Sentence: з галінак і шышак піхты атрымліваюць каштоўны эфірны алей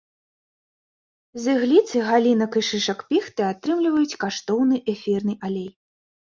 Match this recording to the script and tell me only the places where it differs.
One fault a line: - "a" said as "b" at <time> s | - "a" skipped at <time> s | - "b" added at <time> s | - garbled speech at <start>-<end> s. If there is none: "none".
- "ігліцы" added at 1.6 s